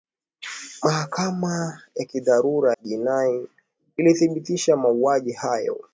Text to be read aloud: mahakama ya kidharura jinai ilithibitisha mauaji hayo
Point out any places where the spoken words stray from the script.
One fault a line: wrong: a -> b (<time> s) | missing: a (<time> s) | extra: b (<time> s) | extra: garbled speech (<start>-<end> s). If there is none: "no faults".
no faults